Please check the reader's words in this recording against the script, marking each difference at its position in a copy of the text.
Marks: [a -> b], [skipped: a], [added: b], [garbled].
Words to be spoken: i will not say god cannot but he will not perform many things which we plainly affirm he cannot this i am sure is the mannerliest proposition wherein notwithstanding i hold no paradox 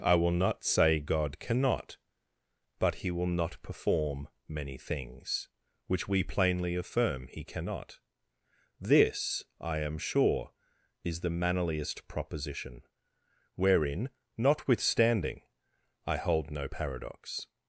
i will not say god cannot but he will not perform many things which we plainly affirm he cannot this i am sure is the mannerliest proposition wherein notwithstanding i hold no paradox